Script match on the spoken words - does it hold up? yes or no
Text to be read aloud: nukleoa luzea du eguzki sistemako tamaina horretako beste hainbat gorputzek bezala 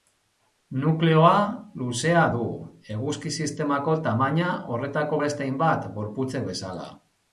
yes